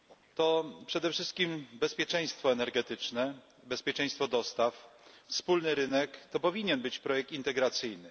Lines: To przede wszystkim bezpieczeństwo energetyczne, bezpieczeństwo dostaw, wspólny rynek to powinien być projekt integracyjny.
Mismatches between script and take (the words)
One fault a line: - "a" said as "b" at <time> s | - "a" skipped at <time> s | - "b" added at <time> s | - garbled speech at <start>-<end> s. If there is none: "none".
none